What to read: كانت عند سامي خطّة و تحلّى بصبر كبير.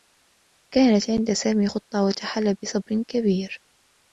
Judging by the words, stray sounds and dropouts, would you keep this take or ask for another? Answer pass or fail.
pass